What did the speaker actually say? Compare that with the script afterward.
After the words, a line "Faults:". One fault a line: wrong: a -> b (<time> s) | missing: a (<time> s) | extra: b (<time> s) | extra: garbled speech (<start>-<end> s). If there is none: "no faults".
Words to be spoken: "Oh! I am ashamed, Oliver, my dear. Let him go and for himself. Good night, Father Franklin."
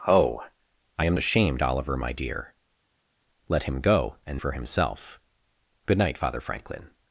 "Oh! I am ashamed, Oliver, my dear. Let him go and for himself. Good night, Father Franklin."
Faults:
no faults